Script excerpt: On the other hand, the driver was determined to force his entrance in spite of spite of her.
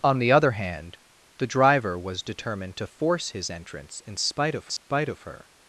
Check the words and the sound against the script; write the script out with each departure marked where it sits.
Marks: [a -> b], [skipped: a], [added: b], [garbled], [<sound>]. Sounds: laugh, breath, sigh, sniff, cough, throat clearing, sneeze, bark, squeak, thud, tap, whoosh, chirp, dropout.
On the other hand, the driver was determined to force his entrance in spite of spite [dropout] of her.